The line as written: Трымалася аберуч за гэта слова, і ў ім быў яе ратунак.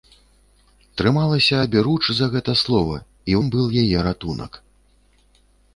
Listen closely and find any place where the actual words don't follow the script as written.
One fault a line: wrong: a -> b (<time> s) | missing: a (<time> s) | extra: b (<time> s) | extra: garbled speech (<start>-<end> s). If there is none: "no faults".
missing: ў (3.4 s)